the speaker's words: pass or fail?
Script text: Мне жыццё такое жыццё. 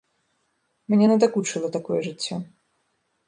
fail